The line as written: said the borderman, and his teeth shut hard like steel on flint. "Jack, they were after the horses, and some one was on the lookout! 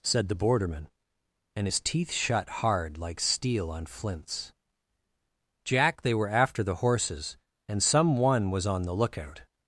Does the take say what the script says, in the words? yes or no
no